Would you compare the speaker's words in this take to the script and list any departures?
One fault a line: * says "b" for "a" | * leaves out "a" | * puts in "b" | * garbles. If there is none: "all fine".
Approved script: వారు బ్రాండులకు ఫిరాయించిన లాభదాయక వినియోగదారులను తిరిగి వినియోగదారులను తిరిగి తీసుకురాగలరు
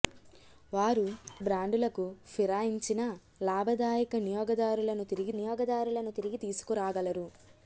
all fine